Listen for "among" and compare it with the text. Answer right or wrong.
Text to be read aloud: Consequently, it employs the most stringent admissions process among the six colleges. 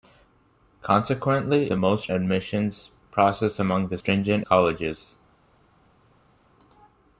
right